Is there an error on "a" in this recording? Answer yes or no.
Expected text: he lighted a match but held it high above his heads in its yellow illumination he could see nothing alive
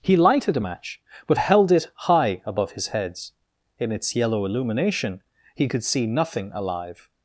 no